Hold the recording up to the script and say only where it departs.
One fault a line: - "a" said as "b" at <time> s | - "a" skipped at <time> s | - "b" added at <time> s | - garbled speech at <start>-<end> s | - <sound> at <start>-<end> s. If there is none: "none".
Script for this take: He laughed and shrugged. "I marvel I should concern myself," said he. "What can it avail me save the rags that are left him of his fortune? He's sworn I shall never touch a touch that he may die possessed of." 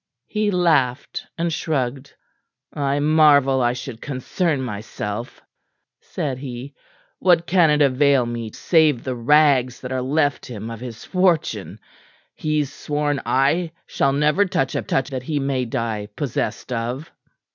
none